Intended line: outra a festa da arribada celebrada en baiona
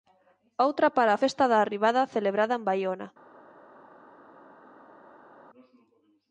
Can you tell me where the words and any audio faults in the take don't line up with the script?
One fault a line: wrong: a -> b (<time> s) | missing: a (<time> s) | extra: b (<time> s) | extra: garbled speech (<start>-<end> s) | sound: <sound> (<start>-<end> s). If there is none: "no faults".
extra: para (1.0 s)